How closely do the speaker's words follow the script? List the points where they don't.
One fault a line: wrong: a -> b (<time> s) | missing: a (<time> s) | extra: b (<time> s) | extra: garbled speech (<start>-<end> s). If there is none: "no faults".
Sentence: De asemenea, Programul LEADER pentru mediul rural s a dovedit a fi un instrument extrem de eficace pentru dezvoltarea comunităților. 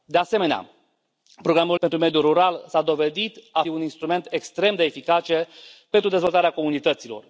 missing: LEADER (1.8 s)
missing: fi (3.6 s)